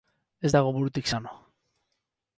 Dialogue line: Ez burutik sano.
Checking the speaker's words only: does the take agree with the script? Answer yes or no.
no